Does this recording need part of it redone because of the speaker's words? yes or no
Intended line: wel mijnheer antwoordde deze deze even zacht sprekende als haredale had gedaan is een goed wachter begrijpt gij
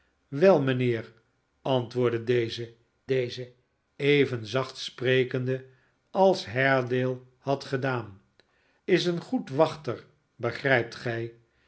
no